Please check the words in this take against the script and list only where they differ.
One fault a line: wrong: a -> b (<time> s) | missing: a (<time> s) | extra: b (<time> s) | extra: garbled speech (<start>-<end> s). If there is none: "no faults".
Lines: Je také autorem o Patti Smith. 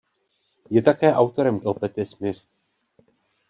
no faults